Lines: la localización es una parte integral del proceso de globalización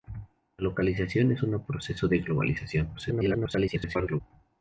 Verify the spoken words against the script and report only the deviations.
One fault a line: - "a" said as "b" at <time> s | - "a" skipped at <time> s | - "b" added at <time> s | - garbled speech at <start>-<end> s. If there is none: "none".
- "parte integral del" skipped at 1.6 s
- garbled speech at 2.9-4.2 s